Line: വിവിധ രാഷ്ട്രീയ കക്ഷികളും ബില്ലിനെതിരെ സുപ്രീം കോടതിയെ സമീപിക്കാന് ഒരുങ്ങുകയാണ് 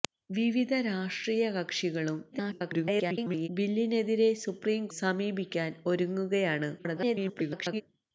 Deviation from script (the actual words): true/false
true